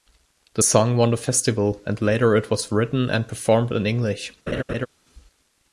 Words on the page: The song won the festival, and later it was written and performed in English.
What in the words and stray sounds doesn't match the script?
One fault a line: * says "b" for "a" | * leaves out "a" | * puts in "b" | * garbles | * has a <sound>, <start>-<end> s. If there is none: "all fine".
* has a laugh, 4.5-4.9 s